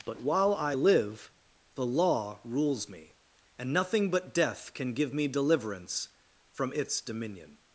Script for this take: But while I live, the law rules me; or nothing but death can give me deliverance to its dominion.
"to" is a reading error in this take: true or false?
true